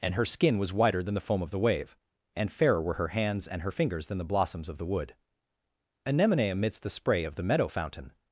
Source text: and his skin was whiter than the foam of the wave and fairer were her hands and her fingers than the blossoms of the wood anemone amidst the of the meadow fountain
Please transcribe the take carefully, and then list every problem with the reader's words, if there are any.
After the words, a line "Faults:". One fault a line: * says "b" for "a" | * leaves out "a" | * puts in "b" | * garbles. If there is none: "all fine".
and her skin was whiter than the foam of the wave and fairer were her hands and her fingers than the blossoms of the wood anemone amidst the spray of the meadow fountain
Faults:
* says "her" for "his"
* puts in "spray"